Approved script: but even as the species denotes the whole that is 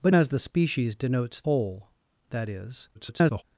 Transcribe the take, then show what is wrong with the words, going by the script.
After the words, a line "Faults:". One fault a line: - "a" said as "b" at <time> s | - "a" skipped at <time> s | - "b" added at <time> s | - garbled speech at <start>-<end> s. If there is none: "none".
but as the species denotes whole that is [garbled]
Faults:
- "even" skipped at 0.1 s
- "the" skipped at 1.4 s
- garbled speech at 2.9-3.4 s